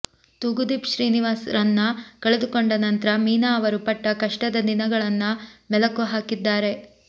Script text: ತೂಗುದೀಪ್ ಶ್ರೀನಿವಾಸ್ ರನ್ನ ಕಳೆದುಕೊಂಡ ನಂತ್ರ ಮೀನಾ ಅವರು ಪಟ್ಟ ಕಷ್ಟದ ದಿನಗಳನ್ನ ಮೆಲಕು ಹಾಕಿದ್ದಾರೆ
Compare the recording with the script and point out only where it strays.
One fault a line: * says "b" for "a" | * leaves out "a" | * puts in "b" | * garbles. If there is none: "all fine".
all fine